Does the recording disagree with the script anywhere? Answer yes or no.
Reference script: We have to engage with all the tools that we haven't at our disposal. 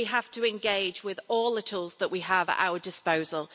yes